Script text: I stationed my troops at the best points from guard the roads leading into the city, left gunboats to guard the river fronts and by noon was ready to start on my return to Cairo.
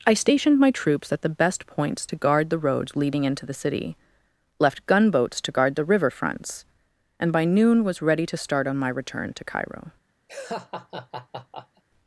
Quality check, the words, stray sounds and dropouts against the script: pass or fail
fail